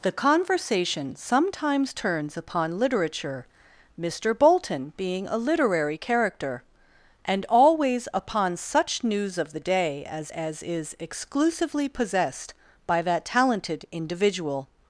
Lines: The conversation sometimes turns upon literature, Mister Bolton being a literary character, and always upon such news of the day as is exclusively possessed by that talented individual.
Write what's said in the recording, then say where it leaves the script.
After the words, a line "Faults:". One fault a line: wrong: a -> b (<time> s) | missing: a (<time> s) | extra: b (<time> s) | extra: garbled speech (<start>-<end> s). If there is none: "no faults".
The conversation sometimes turns upon literature, Mister Bolton being a literary character, and always upon such news of the day as as is exclusively possessed by that talented individual.
Faults:
extra: as (10.3 s)